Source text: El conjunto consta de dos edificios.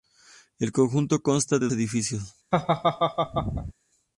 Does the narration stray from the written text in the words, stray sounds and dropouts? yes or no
yes